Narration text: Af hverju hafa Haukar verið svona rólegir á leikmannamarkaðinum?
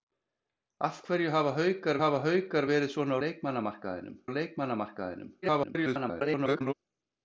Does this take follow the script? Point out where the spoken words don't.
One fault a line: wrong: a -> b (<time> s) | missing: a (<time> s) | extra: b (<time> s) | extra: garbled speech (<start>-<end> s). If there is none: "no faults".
extra: hafa Haukar (2.0 s)
wrong: rólegir -> leikmannamarkaðinum (3.2 s)
extra: garbled speech (5.4-6.7 s)